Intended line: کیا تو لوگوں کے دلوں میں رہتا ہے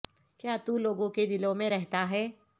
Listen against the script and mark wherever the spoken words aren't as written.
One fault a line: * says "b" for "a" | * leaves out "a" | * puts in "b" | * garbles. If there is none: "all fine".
all fine